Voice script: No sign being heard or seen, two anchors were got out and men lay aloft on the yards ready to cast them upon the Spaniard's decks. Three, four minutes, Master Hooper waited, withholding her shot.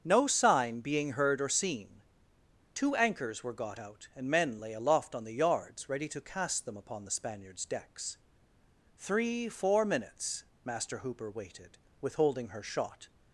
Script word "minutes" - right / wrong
right